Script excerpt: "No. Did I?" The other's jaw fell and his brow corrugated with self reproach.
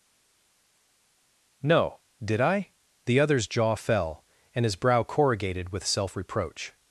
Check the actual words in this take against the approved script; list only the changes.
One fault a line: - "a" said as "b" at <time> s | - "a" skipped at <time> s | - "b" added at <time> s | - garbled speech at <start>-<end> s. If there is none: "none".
none